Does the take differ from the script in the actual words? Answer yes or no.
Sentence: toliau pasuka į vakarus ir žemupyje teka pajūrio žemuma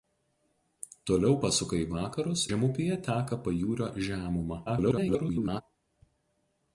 yes